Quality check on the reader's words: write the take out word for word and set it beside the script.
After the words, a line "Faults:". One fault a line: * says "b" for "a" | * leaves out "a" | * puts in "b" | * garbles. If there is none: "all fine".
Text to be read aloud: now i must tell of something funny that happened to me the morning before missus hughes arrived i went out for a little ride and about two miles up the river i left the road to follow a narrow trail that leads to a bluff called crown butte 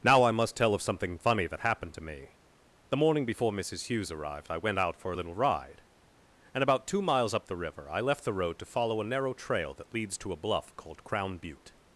now i must tell of something funny that happened to me the morning before missus hughes arrived i went out for a little ride and about two miles up the river i left the road to follow a narrow trail that leads to a bluff called crown butte
Faults:
all fine